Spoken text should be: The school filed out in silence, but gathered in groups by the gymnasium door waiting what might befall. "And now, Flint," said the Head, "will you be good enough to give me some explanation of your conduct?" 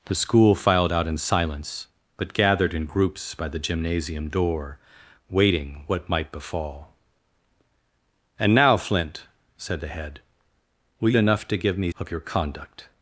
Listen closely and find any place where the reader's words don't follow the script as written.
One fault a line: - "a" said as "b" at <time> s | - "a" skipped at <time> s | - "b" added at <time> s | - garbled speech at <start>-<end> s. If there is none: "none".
- "you be good" skipped at 11.1 s
- "some explanation" skipped at 11.9 s